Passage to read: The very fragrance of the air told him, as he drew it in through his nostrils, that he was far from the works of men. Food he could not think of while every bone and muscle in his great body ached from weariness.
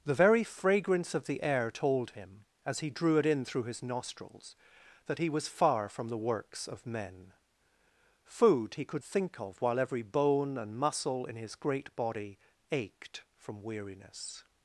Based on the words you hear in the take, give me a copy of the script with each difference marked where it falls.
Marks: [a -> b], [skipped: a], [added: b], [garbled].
The very fragrance of the air told him, as he drew it in through his nostrils, that he was far from the works of men. Food he could [skipped: not] think of while every bone and muscle in his great body ached from weariness.